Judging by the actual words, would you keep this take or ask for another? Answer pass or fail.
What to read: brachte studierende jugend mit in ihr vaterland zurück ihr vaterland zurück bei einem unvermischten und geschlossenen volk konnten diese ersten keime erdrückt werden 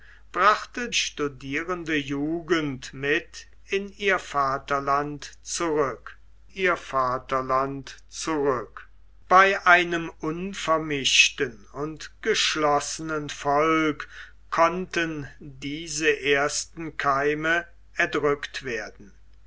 pass